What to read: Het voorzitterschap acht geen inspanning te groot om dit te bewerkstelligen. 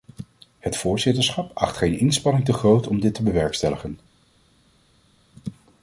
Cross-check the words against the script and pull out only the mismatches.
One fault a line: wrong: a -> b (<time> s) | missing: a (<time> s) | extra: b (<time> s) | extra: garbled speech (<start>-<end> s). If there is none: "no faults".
no faults